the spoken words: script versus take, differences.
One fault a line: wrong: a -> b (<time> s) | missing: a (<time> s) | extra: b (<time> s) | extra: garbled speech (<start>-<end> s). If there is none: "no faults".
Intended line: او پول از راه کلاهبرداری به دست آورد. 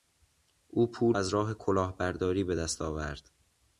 no faults